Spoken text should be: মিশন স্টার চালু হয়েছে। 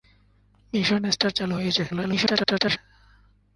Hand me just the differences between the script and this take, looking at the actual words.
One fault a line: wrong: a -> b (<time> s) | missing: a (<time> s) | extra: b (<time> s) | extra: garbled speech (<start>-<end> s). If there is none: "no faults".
extra: garbled speech (1.9-2.8 s)